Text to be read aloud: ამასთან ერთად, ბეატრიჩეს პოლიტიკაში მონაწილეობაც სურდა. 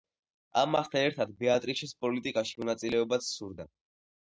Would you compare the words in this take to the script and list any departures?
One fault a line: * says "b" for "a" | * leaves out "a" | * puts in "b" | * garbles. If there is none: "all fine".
all fine